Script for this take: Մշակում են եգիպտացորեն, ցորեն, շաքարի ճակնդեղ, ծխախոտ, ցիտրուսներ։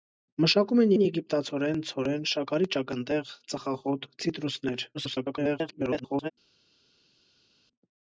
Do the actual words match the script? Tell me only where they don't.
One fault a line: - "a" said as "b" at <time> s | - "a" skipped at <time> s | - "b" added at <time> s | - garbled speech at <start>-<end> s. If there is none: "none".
- "են" added at 0.9 s
- garbled speech at 4.9-6.3 s